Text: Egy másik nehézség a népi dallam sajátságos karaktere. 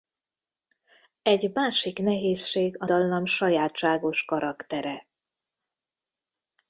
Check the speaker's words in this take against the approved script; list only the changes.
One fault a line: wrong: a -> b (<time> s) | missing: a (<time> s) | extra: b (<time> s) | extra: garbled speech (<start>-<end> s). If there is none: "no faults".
missing: népi (2.9 s)